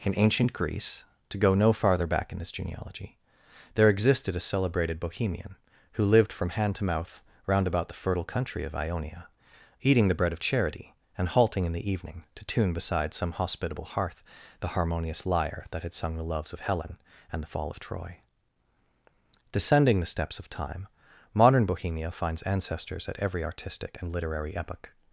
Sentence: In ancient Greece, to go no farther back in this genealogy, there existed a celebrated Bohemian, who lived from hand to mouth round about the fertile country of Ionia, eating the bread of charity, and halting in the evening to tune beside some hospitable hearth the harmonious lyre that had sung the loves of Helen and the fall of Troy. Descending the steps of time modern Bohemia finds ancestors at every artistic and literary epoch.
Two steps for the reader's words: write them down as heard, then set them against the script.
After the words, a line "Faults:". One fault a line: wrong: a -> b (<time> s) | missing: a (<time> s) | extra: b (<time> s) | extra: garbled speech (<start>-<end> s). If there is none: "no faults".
In ancient Greece, to go no farther back in this genealogy, there existed a celebrated Bohemian, who lived from hand to mouth round about the fertile country of Ionia, eating the bread of charity, and halting in the evening to tune beside some hospitable hearth the harmonious lyre that had sung the loves of Helen and the fall of Troy. Descending the steps of time modern Bohemia finds ancestors at every artistic and literary epoch.
Faults:
no faults